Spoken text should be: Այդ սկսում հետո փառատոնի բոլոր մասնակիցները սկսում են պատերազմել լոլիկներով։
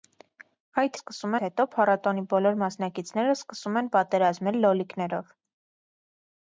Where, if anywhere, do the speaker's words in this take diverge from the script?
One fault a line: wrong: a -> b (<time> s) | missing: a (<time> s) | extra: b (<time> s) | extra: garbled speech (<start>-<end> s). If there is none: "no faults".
no faults